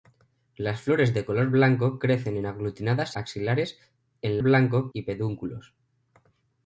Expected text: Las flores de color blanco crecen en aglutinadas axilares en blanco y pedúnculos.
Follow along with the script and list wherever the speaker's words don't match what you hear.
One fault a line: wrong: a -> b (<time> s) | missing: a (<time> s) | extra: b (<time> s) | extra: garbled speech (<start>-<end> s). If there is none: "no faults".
no faults